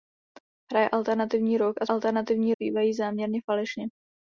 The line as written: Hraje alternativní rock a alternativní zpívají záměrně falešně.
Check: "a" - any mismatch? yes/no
no